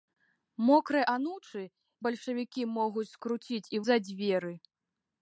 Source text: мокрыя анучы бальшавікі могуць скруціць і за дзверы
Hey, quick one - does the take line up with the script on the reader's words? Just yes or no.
yes